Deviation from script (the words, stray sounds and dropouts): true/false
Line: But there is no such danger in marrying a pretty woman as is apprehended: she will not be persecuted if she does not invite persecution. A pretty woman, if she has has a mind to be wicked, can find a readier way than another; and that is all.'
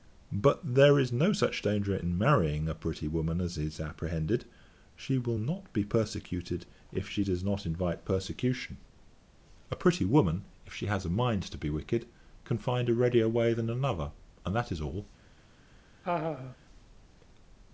true